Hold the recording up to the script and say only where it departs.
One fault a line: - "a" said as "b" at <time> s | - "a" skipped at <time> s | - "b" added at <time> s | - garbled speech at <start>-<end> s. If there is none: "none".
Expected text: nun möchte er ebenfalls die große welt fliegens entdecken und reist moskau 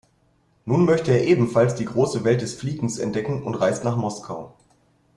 - "des" added at 2.4 s
- "nach" added at 3.8 s